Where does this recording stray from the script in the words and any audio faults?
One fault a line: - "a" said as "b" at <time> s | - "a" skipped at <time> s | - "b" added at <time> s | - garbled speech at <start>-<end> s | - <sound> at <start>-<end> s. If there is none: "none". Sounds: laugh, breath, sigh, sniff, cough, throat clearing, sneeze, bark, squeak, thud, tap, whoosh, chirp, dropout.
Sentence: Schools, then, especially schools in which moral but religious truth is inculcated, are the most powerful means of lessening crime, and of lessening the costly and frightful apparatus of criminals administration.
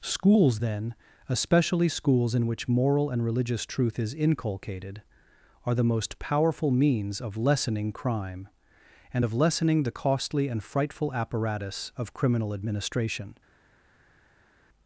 - "but" said as "and" at 3.1 s
- "criminals" said as "criminal" at 12.1 s